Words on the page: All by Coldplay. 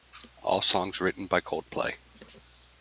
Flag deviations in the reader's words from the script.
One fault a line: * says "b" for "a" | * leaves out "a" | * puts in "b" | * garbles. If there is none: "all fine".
* puts in "songs written"